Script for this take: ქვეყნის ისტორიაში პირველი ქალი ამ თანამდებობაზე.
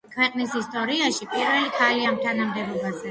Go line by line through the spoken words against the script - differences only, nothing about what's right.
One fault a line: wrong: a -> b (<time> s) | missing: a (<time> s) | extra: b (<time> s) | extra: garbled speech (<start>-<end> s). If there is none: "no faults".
no faults